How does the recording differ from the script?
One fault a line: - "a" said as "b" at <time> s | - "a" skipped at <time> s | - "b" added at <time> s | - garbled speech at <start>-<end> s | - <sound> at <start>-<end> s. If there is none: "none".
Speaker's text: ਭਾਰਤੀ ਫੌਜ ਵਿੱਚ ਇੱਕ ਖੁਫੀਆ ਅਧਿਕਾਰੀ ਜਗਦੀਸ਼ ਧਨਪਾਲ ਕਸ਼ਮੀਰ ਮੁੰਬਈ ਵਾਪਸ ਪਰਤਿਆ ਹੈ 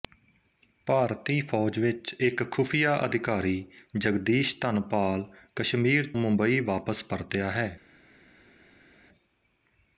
none